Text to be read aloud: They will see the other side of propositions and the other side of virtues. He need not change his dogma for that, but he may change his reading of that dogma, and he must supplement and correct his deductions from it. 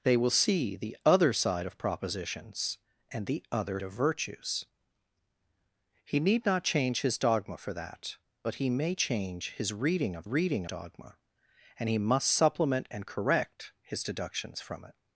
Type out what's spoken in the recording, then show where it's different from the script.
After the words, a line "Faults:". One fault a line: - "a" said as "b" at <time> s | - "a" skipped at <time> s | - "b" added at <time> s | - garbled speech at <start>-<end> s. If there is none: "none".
They will see the other side of propositions and the other of virtues. He need not change his dogma for that, but he may change his reading of reading dogma, and he must supplement and correct his deductions from it.
Faults:
- "side" skipped at 3.8 s
- "that" said as "reading" at 10.2 s